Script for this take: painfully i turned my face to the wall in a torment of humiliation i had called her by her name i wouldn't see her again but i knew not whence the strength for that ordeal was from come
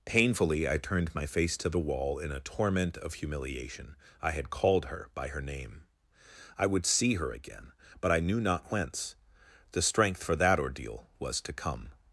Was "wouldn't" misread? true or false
true